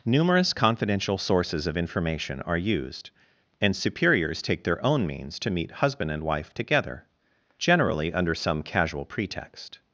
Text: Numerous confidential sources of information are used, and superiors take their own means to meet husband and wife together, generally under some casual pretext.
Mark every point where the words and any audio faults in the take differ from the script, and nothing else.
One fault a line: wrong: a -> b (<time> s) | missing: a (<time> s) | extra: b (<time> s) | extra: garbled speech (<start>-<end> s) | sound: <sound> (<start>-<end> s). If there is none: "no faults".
no faults